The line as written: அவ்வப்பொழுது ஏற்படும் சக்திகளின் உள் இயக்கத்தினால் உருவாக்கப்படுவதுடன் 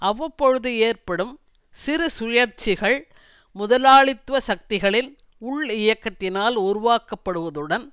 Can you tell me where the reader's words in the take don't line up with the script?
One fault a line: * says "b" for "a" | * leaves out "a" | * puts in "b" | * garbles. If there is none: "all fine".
* puts in "சிறு சுழற்சிகள் முதலாளித்துவ"